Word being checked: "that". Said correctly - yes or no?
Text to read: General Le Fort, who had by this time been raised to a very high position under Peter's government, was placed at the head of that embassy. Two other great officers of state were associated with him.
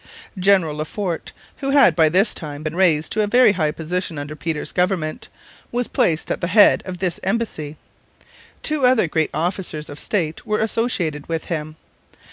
no